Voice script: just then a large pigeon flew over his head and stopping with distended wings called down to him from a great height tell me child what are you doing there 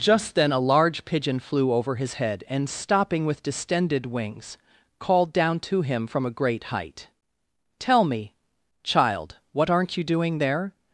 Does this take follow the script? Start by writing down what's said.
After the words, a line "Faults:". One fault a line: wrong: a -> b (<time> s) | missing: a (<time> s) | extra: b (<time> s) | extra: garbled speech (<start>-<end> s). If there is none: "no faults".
just then a large pigeon flew over his head and stopping with distended wings called down to him from a great height tell me child what aren't you doing there
Faults:
wrong: are -> aren't (9.7 s)